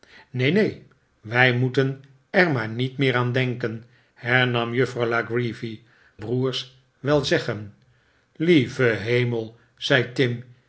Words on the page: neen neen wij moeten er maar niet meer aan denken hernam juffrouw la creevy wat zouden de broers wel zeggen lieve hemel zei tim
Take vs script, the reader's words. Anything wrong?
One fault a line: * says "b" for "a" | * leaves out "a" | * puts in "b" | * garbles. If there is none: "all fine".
* leaves out "wat zouden de"